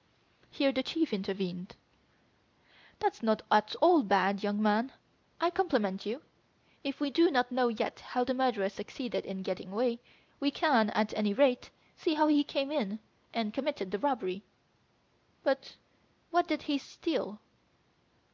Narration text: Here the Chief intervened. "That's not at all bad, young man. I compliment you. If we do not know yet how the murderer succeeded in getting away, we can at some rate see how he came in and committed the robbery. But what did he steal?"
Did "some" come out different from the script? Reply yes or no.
yes